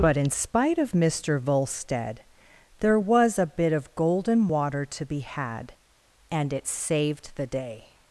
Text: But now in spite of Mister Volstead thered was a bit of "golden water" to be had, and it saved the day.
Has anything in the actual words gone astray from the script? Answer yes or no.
yes